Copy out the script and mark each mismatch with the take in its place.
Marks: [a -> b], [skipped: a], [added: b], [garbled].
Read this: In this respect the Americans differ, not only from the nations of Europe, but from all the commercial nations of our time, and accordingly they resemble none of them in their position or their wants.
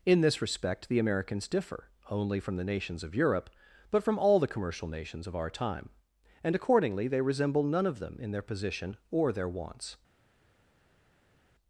In this respect the Americans differ, [skipped: not] only from the nations of Europe, but from all the commercial nations of our time, and accordingly they resemble none of them in their position or their wants.